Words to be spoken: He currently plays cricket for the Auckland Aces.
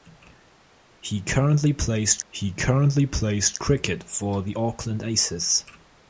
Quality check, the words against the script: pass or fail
fail